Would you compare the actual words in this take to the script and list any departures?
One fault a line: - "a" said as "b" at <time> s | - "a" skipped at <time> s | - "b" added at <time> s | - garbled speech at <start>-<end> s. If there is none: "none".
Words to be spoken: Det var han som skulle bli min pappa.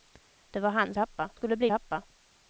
- "som" said as "pappa" at 0.9 s
- "min" skipped at 1.7 s